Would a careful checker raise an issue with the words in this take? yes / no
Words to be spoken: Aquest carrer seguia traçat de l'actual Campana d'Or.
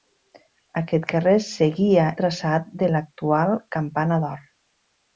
no